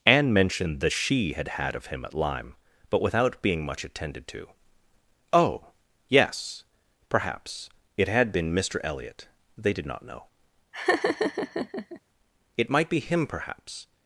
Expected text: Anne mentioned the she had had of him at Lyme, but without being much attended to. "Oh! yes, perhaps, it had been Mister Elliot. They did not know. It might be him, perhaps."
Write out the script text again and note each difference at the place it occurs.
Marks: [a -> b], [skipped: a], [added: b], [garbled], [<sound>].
Anne mentioned the she had had of him at Lyme, but without being much attended to. "Oh! yes, perhaps, it had been Mister Elliot. They did not know. [laugh] It might be him, perhaps."